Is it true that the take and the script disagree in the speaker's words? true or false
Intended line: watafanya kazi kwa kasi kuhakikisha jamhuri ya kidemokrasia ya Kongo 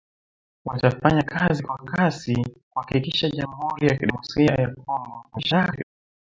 true